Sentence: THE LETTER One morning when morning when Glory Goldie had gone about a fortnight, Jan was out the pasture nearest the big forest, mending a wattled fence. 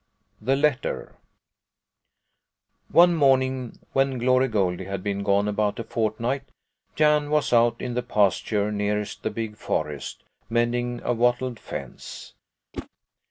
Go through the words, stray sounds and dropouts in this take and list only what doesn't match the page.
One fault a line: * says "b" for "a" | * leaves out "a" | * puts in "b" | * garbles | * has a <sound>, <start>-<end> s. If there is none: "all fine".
* leaves out "morning when"
* puts in "been"
* puts in "in"
* has a whoosh, 12.7-12.9 s